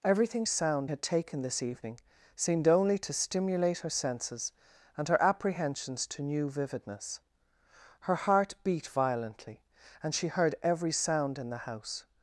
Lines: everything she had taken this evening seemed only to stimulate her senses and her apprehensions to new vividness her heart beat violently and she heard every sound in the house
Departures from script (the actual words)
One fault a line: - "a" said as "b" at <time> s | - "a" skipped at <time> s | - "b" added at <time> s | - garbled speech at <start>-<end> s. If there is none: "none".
- "she" said as "sound" at 0.5 s